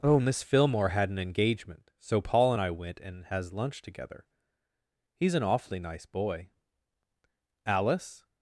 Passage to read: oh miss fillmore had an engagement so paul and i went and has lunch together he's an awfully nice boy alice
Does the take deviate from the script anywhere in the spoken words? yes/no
no